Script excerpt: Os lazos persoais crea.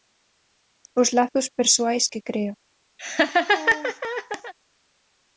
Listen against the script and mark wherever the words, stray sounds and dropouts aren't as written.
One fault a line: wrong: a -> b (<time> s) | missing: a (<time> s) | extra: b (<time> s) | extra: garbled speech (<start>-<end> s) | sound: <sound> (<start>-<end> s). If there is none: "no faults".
extra: que (2.1 s)
sound: laugh (3.0-4.5 s)